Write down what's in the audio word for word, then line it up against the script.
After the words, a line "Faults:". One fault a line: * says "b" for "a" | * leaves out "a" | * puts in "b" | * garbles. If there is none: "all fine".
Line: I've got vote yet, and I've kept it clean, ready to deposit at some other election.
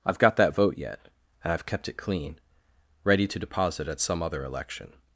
I've got that vote yet, and I've kept it clean, ready to deposit at some other election.
Faults:
* puts in "that"